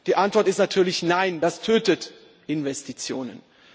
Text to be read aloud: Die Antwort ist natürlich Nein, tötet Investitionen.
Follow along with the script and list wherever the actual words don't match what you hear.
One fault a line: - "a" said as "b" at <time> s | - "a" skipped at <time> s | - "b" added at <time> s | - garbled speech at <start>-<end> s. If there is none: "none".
- "das" added at 1.4 s